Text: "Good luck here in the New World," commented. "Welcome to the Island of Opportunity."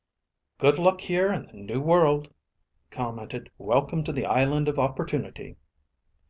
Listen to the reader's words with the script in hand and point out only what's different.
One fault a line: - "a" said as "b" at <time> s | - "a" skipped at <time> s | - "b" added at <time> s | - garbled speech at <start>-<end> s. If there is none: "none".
none